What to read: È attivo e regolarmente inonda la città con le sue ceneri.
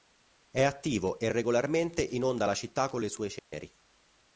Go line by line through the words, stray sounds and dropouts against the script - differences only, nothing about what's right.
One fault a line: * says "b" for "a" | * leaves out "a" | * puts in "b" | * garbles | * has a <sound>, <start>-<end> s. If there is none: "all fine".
* has a dropout, 3.4-3.5 s